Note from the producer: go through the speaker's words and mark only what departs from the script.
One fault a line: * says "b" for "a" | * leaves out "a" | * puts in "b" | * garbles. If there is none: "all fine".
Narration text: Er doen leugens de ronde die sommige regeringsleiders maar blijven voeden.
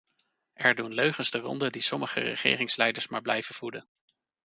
all fine